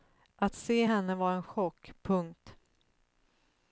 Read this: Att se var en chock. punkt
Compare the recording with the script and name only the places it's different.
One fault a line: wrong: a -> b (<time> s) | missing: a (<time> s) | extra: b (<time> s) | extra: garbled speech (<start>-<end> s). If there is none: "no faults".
extra: henne (0.8 s)